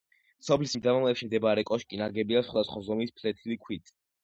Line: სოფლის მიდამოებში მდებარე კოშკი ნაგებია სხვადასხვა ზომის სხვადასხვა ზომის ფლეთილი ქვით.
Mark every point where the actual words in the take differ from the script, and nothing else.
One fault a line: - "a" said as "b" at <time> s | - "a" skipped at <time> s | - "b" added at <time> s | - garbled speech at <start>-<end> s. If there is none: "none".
- "სხვადასხვა ზომის" skipped at 3.2 s